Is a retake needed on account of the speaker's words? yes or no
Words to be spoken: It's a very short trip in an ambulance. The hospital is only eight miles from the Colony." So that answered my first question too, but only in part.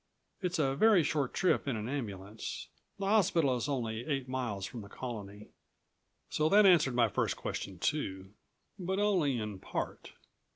no